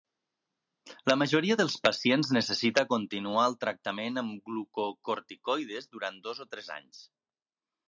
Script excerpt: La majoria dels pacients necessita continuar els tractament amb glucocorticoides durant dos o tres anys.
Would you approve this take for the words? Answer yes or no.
no